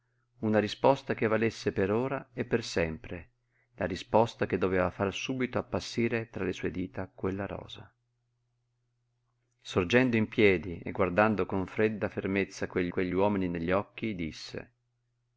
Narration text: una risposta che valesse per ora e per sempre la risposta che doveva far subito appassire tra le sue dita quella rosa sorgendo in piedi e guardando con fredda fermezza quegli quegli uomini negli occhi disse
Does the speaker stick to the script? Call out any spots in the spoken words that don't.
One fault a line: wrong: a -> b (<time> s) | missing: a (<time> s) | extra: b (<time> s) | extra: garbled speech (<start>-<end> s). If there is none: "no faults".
no faults